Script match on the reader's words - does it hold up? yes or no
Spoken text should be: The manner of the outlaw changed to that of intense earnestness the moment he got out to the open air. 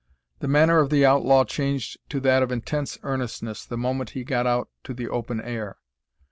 yes